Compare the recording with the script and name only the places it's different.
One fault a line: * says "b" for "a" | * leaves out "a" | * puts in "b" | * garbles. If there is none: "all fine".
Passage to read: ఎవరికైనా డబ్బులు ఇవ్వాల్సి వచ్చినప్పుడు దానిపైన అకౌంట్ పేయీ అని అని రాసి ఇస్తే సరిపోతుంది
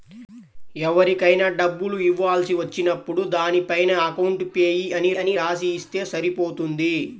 all fine